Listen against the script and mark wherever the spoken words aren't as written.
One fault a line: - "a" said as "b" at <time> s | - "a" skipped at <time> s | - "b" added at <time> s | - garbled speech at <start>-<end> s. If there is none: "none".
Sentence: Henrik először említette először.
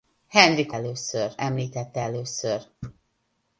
none